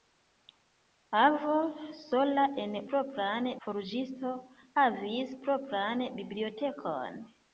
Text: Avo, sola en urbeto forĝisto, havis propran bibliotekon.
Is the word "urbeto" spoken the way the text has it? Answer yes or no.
no